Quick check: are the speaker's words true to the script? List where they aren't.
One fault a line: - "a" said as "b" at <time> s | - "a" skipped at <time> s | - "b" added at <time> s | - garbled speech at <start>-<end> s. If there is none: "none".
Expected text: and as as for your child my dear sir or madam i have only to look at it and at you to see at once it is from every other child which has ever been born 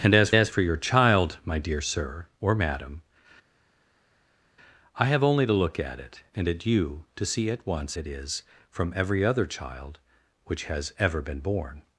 none